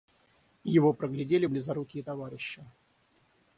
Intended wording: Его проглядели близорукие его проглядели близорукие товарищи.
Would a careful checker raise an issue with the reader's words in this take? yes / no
yes